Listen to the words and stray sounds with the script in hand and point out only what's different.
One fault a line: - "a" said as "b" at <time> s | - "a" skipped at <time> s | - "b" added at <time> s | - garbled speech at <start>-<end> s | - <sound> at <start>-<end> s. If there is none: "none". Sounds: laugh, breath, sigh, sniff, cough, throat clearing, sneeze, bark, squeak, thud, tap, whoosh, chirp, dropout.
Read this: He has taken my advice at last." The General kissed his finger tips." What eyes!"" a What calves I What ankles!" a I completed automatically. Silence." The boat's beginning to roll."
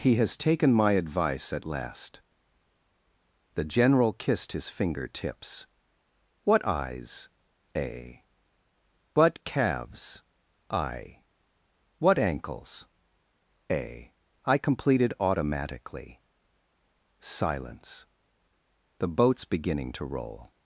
none